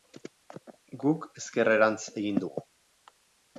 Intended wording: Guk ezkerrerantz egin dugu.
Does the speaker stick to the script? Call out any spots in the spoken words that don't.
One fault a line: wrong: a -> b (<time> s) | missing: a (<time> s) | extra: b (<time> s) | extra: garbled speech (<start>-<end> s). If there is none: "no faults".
no faults